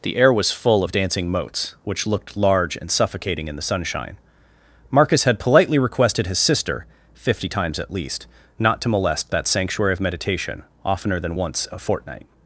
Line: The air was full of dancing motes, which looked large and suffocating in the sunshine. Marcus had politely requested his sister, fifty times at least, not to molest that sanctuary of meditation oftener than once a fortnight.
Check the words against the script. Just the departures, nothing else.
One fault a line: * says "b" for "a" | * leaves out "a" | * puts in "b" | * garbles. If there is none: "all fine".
all fine